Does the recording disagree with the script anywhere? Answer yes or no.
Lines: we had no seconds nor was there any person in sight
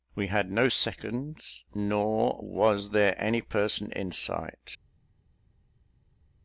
no